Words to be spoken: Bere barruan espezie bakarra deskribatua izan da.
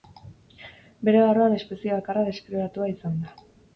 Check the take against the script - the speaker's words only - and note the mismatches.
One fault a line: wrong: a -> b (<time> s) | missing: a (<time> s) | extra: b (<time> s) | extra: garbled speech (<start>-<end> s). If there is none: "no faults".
no faults